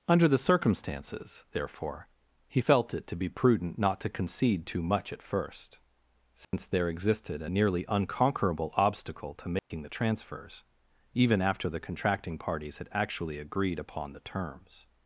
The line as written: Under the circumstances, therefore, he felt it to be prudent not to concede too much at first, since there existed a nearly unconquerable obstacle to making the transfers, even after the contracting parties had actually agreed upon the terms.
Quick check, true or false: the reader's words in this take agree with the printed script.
true